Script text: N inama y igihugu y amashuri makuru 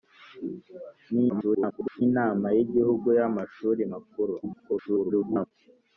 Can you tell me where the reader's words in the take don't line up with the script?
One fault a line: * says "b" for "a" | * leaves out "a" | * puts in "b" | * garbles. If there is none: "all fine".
* garbles
* garbles